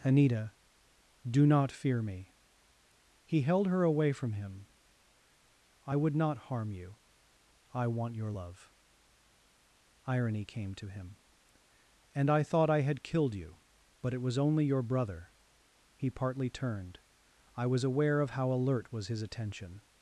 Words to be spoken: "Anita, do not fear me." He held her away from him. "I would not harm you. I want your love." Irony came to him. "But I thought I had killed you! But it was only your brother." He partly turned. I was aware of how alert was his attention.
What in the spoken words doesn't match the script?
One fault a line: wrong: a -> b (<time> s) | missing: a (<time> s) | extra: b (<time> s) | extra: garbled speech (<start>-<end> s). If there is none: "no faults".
wrong: But -> And (12.1 s)